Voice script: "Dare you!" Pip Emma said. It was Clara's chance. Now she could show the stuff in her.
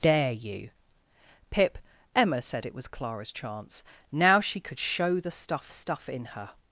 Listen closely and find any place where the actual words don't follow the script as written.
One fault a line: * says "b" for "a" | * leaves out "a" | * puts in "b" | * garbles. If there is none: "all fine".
* puts in "stuff"